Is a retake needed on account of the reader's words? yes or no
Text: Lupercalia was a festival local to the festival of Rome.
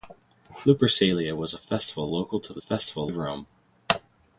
no